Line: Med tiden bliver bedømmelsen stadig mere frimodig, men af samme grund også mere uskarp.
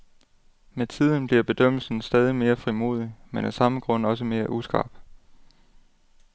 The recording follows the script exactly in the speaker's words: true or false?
true